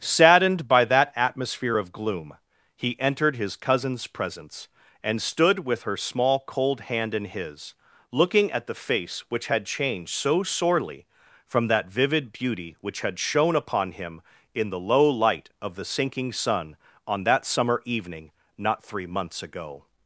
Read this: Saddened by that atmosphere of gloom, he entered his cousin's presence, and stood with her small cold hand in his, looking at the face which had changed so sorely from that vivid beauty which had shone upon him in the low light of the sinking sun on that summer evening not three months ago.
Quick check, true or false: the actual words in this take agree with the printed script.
true